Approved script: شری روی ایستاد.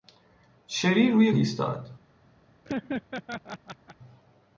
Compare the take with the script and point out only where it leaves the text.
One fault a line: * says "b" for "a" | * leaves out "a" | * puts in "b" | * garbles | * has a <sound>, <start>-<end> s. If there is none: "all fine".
* has a laugh, 2.6-4.0 s